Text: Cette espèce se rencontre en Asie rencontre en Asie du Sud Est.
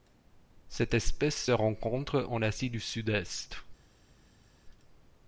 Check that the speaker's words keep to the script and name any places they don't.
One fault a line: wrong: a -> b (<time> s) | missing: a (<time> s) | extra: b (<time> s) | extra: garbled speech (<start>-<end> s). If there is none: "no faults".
missing: rencontre en Asie (2.7 s)